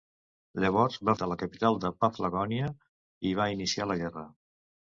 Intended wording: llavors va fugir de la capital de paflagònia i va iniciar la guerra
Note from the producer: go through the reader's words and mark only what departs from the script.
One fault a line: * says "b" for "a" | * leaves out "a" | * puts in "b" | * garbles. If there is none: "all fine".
* leaves out "fugir"